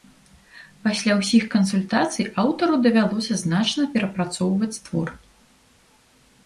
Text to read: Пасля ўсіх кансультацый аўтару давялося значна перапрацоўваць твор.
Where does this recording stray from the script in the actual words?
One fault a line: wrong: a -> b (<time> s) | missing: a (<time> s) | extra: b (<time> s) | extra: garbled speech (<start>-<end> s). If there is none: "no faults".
no faults